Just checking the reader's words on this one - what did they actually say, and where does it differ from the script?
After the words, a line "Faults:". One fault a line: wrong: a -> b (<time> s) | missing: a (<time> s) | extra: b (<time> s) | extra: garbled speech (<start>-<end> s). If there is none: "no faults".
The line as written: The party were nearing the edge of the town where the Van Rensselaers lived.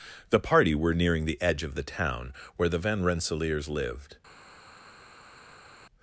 The party were nearing the edge of the town where the Van Rensselaers lived.
Faults:
no faults